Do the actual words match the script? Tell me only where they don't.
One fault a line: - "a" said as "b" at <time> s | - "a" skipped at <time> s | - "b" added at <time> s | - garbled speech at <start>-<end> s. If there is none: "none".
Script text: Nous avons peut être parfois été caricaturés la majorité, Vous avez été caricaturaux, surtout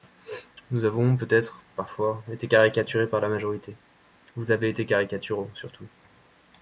- "par" added at 3.1 s